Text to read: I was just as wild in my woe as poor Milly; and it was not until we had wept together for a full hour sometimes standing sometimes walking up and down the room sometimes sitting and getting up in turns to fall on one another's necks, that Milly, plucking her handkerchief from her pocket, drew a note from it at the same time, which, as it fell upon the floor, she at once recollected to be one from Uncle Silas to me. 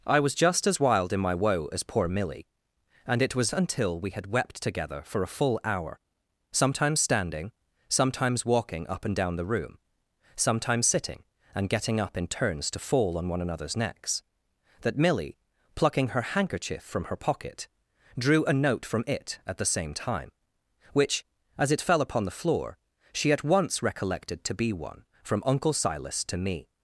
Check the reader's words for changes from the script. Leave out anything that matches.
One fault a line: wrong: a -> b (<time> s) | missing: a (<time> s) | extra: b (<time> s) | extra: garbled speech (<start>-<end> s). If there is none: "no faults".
missing: not (3.5 s)